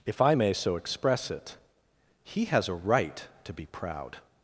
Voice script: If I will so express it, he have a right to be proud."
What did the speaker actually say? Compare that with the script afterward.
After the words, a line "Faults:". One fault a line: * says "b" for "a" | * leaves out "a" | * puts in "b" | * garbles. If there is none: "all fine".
If I may so express it, he has a right to be proud."
Faults:
* says "may" for "will"
* says "has" for "have"